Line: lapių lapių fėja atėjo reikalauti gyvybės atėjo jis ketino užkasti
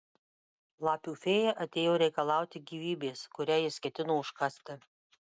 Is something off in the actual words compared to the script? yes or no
yes